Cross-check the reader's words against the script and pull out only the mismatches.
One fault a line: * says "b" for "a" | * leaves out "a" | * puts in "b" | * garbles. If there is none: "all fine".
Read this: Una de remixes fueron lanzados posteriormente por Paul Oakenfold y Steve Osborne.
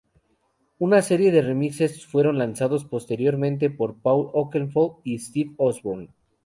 * puts in "serie"